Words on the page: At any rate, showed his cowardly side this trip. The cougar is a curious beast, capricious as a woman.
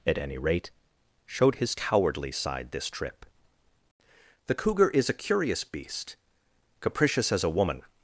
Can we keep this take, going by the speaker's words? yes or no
yes